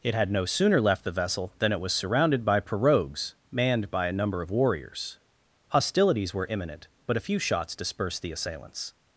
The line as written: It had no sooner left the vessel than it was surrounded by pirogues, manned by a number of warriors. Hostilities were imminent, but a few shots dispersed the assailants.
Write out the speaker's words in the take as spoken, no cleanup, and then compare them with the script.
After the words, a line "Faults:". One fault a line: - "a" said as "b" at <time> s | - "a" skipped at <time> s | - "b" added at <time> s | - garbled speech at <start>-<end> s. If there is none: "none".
It had no sooner left the vessel than it was surrounded by pirogues, manned by a number of warriors. Hostilities were imminent, but a few shots dispersed the assailants.
Faults:
none